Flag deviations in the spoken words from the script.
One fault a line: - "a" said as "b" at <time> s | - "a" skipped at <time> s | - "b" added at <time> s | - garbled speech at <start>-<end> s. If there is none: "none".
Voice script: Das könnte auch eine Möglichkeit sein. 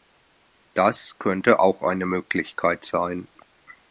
none